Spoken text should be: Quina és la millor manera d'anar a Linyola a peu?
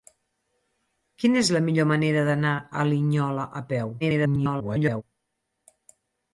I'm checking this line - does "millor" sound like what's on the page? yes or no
yes